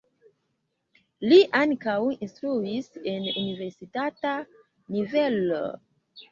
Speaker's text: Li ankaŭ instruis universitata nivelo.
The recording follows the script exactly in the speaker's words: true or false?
false